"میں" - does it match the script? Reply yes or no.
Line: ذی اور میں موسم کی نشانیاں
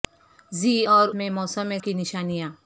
yes